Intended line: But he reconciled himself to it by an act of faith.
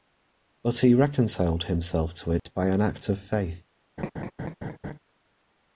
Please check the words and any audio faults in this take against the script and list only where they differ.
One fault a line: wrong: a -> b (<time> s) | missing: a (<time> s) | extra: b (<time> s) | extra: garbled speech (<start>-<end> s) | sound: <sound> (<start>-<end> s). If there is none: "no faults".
sound: dropout (2.4-2.5 s)
sound: laugh (4.0-5.0 s)